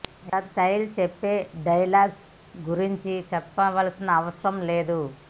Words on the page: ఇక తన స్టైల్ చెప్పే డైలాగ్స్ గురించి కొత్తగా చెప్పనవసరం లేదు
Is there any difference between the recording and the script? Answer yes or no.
yes